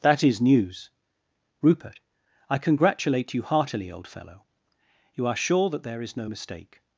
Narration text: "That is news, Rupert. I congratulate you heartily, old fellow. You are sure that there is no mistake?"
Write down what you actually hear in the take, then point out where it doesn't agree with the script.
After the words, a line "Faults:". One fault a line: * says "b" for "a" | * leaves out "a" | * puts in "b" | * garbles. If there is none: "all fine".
"That is news, Rupert. I congratulate you heartily, old fellow. You are sure that there is no mistake?"
Faults:
all fine